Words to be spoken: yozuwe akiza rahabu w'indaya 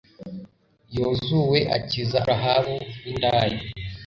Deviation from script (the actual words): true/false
false